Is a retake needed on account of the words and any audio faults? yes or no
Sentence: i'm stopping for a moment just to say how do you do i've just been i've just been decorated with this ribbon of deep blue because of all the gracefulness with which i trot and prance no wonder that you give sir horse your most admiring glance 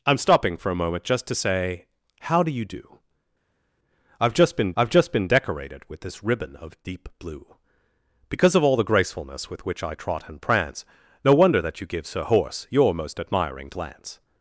no